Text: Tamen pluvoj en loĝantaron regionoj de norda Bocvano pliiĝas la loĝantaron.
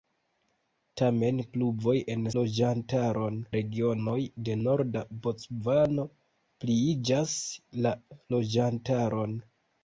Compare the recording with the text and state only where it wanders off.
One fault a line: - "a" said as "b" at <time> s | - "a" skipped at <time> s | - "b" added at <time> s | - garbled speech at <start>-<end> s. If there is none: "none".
none